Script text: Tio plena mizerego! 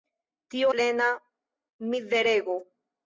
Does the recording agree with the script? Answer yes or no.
yes